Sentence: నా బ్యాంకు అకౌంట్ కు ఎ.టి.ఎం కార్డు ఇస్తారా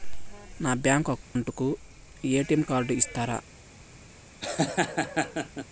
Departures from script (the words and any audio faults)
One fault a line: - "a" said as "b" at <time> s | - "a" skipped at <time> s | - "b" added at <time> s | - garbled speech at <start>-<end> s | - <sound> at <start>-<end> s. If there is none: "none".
- dropout at 1.2-1.4 s
- laugh at 4.4-5.7 s